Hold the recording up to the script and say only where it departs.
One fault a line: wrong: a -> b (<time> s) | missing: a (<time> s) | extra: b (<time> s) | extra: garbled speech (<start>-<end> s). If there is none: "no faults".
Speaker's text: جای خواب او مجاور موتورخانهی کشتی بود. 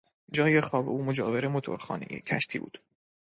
no faults